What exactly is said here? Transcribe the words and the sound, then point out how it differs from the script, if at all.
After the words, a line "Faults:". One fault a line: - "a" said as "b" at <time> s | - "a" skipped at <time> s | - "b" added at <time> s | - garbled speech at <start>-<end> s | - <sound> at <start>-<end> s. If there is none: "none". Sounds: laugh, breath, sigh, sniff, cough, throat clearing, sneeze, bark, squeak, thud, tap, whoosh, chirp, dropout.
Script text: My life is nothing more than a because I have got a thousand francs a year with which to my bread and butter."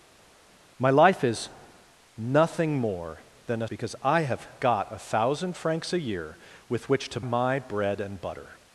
My life is nothing more than a because I have got a thousand francs a year with which to my bread and butter."
Faults:
none